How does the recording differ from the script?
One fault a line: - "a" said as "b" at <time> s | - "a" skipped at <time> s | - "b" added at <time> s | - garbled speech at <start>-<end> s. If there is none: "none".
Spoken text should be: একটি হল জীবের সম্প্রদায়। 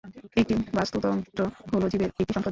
- "বাস্তুতন্ত্র" added at 0.7 s
- "একটি" added at 2.1 s